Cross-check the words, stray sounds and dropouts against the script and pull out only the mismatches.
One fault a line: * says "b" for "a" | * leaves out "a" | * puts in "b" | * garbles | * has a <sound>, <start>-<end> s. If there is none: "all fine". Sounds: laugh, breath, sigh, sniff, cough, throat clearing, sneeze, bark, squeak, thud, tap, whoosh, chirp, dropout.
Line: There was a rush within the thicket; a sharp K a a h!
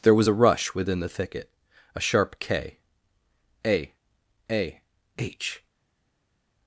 all fine